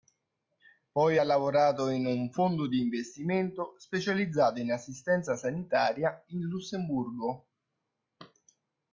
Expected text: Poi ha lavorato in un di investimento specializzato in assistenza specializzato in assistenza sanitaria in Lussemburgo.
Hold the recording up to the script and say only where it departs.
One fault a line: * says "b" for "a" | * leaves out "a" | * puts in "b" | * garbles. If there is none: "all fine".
* puts in "fondo"
* leaves out "specializzato in assistenza"